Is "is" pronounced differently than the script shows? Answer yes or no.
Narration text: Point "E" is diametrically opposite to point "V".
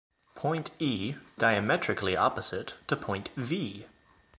yes